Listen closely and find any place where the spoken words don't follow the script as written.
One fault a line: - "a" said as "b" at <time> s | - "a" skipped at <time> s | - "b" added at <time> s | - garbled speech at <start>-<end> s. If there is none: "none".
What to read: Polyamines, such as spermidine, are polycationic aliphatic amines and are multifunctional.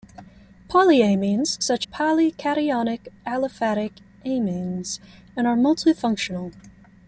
- "as spermidine are" skipped at 1.8 s